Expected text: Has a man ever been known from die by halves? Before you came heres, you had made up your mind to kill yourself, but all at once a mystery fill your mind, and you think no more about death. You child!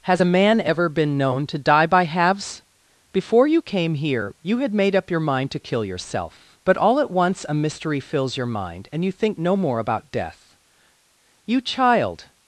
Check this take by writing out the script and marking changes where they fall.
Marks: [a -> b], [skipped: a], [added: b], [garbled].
Has a man ever been known [from -> to] die by halves? Before you came [heres, -> here] you had made up your mind to kill yourself, but all at once a mystery [fill -> fills] your mind, and you think no more about death. You child!